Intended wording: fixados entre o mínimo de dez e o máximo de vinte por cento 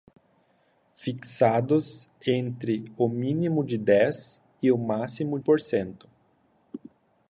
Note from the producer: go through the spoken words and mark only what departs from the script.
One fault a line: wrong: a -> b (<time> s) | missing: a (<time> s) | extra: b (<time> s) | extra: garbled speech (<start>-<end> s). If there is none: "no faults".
missing: de vinte (5.4 s)